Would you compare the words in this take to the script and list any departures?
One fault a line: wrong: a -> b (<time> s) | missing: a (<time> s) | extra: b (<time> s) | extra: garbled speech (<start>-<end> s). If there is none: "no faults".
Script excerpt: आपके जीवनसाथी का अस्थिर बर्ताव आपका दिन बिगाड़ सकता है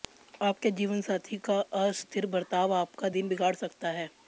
no faults